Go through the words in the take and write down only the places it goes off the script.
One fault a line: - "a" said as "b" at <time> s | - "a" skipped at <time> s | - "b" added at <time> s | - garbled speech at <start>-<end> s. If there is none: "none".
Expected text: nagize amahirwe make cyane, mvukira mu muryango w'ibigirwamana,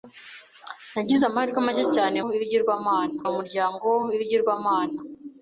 - "mvukira" said as "w'ibigirwamana" at 2.3 s